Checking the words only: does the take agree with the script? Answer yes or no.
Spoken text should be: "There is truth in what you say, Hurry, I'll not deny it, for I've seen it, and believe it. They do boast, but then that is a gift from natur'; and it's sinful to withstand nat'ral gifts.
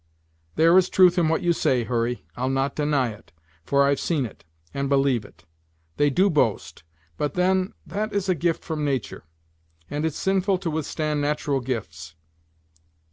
yes